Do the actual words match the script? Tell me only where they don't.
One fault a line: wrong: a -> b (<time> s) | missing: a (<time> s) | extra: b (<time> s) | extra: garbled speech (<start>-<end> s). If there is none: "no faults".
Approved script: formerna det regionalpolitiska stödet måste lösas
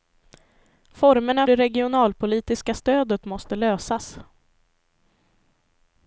no faults